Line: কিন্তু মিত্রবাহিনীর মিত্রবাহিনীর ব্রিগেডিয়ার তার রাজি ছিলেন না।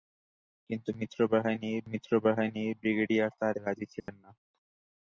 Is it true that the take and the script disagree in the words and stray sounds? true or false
true